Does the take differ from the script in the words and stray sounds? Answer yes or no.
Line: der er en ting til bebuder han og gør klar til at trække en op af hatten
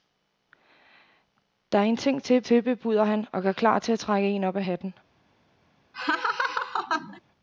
yes